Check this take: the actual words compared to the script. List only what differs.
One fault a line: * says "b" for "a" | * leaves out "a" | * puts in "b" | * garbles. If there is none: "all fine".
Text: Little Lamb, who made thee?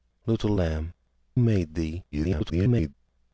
* leaves out "who"
* garbles